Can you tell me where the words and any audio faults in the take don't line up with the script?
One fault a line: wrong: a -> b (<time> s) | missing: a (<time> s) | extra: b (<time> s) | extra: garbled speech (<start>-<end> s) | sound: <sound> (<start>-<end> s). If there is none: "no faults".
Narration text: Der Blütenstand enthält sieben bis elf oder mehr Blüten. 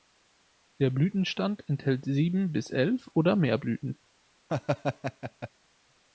sound: laugh (4.5-5.5 s)